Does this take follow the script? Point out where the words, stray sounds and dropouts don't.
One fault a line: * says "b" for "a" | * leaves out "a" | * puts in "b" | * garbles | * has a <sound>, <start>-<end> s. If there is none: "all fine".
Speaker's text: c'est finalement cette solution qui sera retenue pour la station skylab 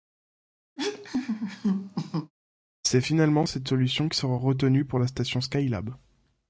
* has a laugh, 0.8-2.3 s